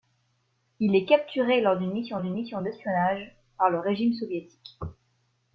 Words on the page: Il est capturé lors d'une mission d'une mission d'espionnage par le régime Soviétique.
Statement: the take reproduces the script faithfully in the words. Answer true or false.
true